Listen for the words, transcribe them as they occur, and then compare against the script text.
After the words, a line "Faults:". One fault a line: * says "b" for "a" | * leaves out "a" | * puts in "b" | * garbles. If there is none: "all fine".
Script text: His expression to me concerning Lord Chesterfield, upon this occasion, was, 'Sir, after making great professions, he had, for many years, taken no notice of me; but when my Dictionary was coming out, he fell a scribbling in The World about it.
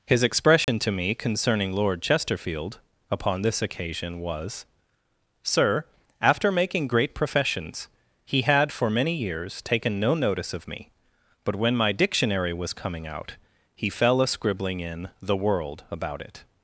His expression to me concerning Lord Chesterfield, upon this occasion, was, 'Sir, after making great professions, he had, for many years, taken no notice of me; but when my Dictionary was coming out, he fell a scribbling in The World about it.
Faults:
all fine